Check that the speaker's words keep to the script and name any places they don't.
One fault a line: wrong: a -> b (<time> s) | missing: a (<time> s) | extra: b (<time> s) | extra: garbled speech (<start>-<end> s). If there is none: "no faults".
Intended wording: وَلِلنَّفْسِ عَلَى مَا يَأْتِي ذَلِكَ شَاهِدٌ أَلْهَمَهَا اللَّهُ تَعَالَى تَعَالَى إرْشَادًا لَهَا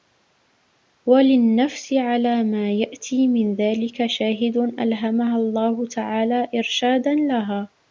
extra: مِنْ (3.3 s)
missing: تَعَالَى (6.5 s)